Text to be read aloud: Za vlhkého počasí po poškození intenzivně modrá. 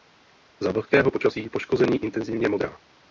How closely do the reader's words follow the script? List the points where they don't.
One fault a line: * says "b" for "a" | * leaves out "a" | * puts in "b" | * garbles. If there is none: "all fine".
* leaves out "po"